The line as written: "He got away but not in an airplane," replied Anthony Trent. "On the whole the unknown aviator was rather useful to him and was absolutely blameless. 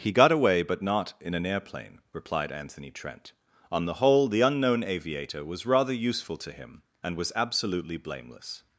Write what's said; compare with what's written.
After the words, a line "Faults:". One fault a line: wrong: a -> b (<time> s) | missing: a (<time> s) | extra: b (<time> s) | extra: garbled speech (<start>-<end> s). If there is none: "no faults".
"He got away but not in an airplane," replied Anthony Trent. "On the whole the unknown aviator was rather useful to him and was absolutely blameless.
Faults:
no faults